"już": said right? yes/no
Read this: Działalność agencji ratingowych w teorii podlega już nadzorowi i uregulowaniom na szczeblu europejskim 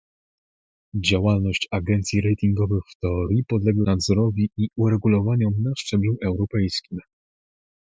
no